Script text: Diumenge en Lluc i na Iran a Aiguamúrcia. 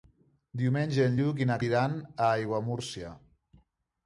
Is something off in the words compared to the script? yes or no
no